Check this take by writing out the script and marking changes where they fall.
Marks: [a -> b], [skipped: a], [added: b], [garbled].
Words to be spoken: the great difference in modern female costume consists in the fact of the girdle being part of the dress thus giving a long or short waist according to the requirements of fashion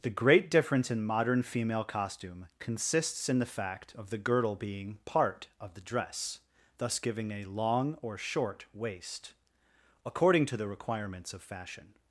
the great difference in modern female costume consists in the fact of the girdle being part of the dress thus giving a long or short waist according to the requirements of fashion